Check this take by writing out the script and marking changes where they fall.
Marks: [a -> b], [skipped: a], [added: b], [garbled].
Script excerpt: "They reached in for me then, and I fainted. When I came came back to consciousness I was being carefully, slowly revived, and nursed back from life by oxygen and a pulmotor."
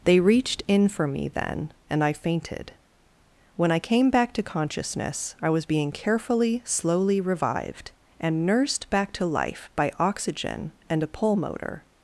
"They reached in for me then, and I fainted. When I came [skipped: came] back to consciousness I was being carefully, slowly revived, and nursed back [from -> to] life by oxygen and a pulmotor."